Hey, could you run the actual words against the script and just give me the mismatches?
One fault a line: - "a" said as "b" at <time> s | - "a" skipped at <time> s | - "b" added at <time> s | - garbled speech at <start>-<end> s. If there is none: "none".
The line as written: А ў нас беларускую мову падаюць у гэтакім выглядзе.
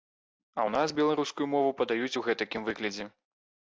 none